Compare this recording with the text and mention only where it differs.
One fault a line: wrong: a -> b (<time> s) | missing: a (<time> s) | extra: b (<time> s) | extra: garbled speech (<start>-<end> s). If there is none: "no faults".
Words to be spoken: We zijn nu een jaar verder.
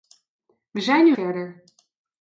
missing: een jaar (1.1 s)